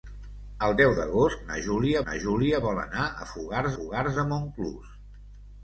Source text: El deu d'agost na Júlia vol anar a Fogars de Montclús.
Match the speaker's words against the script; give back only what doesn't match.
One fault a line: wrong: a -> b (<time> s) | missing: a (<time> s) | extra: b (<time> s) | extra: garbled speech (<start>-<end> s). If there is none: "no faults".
extra: na Júlia (2.1 s)
extra: Fogars (3.8 s)